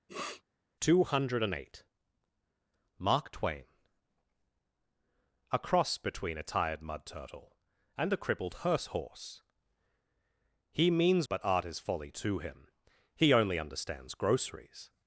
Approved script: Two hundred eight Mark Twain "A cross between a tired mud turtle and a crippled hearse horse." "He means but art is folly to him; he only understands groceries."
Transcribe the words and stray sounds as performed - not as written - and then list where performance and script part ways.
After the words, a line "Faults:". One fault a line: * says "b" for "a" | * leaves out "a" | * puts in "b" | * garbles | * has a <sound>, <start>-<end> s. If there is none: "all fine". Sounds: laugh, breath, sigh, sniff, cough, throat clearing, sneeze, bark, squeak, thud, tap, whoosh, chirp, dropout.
Two hundred eight Mark Twain "A cross between a tired mud turtle and a crippled hearse horse." "He means but art is folly to him; he only understands groceries."
Faults:
* has a sniff, 0.1-0.4 s